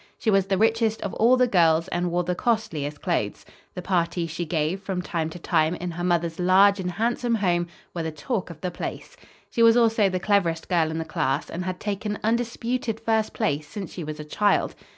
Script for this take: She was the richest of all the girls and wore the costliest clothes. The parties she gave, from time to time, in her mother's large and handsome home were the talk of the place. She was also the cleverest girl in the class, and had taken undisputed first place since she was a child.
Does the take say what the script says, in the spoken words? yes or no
yes